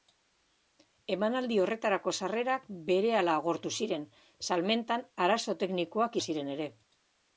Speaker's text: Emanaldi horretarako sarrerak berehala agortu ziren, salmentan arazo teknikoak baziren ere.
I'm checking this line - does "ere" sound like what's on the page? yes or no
yes